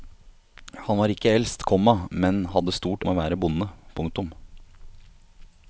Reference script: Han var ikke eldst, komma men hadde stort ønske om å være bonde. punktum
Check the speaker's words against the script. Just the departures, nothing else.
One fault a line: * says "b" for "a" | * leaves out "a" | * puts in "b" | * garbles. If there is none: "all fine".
* leaves out "ønske"